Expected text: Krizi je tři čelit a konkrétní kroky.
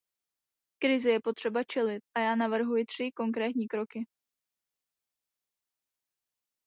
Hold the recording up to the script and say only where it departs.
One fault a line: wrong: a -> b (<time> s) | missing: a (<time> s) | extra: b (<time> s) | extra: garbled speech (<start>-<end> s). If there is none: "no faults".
wrong: tři -> potřeba (1.2 s)
extra: já navrhuji tři (2.2 s)